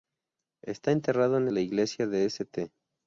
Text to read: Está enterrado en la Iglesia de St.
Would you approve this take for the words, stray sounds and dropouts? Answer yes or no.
yes